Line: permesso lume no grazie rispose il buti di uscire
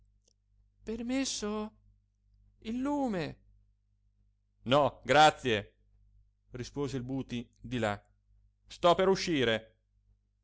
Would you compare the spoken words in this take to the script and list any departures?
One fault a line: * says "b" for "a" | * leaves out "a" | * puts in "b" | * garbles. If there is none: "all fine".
* puts in "il"
* puts in "là sto per"